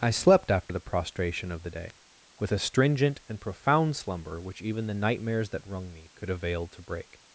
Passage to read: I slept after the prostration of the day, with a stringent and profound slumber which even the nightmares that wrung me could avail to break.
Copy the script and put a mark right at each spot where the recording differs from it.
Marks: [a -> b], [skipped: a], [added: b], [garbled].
I slept after the prostration of the day, with a stringent and profound slumber which even the nightmares that wrung me could avail to break.